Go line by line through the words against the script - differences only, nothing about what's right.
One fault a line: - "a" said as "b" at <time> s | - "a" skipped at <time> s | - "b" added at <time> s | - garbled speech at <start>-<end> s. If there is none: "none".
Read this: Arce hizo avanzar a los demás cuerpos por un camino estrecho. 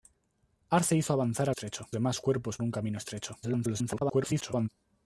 - "los" said as "estrecho" at 1.5 s
- "por" skipped at 2.6 s
- garbled speech at 3.4-4.7 s